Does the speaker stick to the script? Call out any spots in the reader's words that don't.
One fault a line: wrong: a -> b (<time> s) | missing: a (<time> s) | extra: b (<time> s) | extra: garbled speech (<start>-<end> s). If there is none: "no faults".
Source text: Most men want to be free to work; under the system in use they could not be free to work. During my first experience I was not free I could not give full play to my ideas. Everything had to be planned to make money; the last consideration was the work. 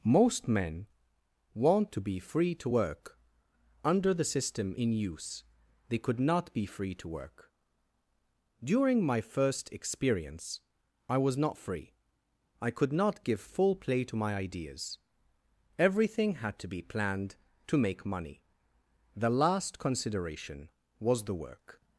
no faults